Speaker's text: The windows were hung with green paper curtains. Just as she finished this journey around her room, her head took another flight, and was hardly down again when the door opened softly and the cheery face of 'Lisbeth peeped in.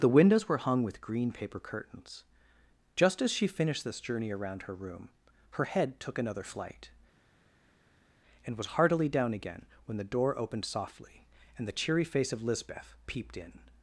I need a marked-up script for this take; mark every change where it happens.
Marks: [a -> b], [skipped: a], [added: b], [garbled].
The windows were hung with green paper curtains. Just as she finished this journey around her room, her head took another flight, and was [hardly -> heartily] down again when the door opened softly and the cheery face of 'Lisbeth peeped in.